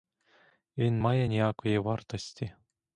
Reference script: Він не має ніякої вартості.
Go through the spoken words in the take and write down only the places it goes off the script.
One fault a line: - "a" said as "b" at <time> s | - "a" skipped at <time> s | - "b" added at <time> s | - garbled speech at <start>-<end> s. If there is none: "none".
- "не" skipped at 1.0 s